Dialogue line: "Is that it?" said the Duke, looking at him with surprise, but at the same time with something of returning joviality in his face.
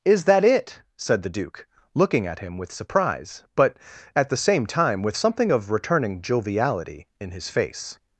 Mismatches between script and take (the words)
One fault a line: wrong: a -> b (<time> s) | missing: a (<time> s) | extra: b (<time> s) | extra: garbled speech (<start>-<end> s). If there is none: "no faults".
no faults